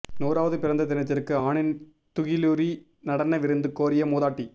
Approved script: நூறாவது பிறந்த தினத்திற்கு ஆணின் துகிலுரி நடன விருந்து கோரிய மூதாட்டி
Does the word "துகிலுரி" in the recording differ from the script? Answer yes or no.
no